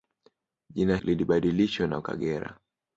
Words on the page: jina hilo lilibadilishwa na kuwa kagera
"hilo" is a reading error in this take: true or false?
true